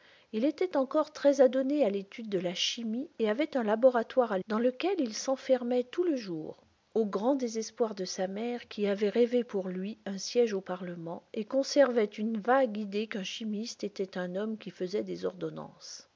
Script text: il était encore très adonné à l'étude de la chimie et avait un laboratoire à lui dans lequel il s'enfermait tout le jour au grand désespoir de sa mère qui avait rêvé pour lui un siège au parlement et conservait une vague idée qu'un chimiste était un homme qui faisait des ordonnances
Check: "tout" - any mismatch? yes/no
no